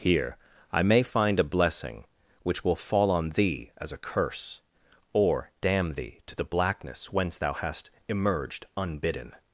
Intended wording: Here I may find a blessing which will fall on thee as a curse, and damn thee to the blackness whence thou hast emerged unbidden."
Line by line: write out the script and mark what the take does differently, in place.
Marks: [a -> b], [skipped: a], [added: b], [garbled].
Here I may find a blessing which will fall on thee as a curse, [and -> or] damn thee to the blackness whence thou hast emerged unbidden."